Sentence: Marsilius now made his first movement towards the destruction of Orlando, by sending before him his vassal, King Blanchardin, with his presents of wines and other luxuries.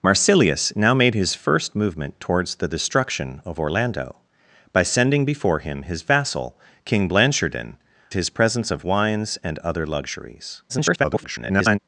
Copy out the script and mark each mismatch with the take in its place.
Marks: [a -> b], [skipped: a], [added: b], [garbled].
Marsilius now made his first movement towards the destruction of Orlando, by sending before him his vassal, King Blanchardin, [skipped: with] his presents of wines and other luxuries. [garbled]